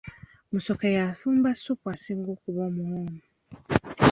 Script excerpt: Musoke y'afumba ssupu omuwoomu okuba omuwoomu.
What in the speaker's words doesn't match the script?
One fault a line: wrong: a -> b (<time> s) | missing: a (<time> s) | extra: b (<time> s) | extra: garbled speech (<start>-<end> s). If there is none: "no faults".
wrong: omuwoomu -> asinga (1.9 s)